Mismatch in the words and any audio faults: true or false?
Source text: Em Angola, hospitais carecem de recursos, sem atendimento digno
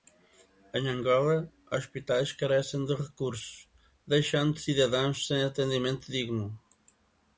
true